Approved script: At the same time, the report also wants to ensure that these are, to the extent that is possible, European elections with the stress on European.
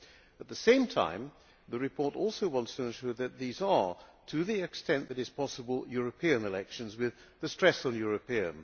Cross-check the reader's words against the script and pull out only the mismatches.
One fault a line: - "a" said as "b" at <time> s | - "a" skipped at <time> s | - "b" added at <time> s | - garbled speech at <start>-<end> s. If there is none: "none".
none